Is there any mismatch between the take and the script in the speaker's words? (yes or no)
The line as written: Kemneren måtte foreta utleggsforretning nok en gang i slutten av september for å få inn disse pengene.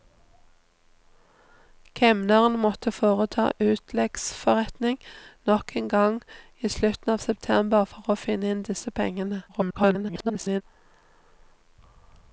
yes